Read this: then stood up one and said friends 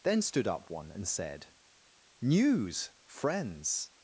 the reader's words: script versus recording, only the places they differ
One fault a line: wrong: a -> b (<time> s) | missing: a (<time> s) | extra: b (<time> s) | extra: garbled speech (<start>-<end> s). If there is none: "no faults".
extra: news (2.2 s)